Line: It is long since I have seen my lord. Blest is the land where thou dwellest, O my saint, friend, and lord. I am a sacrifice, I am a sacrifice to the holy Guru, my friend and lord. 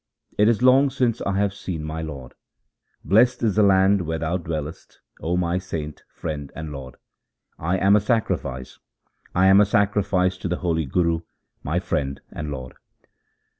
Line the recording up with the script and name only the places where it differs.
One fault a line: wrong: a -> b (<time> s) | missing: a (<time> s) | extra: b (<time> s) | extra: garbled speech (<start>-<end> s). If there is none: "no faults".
no faults